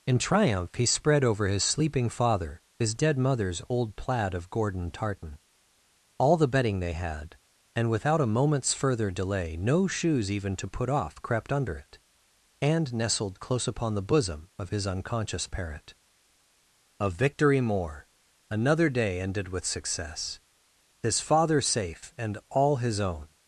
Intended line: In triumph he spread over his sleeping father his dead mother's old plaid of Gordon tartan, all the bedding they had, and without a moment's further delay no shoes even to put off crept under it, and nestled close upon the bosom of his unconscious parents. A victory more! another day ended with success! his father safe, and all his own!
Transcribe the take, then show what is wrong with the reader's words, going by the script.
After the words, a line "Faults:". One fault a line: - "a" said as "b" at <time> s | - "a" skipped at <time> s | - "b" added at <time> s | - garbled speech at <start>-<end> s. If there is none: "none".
In triumph he spread over his sleeping father his dead mother's old plaid of Gordon tartan, all the bedding they had, and without a moment's further delay no shoes even to put off crept under it, and nestled close upon the bosom of his unconscious parent. A victory more! another day ended with success! his father safe, and all his own!
Faults:
- "parents" said as "parent" at 15.5 s